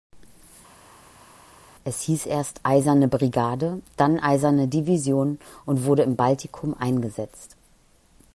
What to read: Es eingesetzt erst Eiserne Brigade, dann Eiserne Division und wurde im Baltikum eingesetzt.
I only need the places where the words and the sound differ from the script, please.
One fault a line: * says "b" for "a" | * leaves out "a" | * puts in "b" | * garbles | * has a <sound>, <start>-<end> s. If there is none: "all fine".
* says "hieß" for "eingesetzt"